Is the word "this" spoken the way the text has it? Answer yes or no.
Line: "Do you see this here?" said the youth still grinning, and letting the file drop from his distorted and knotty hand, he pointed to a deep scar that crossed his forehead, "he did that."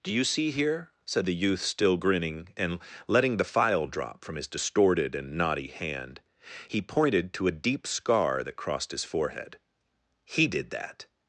no